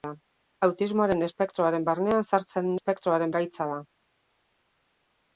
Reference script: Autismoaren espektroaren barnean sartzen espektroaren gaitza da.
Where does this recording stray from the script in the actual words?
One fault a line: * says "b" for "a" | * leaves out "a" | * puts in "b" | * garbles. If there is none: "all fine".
all fine